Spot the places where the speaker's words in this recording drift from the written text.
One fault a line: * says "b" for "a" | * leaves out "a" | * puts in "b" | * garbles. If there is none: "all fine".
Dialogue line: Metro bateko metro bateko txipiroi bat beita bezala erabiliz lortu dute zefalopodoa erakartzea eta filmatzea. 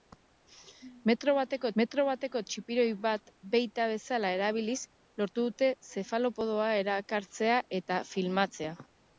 all fine